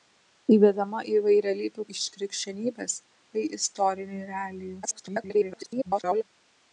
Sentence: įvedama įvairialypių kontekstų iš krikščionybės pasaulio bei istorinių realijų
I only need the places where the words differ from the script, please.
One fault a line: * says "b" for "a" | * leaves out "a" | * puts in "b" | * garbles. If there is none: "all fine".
* leaves out "kontekstų"
* leaves out "pasaulio"
* garbles